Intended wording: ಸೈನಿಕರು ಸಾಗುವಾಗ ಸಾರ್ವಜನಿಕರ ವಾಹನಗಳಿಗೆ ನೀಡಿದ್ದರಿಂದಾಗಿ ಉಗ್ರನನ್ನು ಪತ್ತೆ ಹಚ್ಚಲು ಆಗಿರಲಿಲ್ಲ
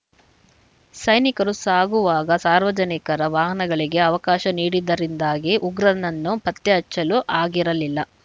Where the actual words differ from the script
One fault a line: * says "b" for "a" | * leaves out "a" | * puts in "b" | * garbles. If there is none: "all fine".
* puts in "ಅವಕಾಶ"